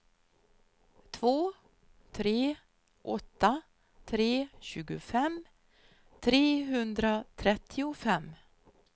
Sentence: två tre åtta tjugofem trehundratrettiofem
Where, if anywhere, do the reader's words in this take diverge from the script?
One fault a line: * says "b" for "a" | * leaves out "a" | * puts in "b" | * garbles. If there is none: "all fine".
* puts in "tre"